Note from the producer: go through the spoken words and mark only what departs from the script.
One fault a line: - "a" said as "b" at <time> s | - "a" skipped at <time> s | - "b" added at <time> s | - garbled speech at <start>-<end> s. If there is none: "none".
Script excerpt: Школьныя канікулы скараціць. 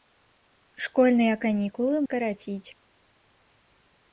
none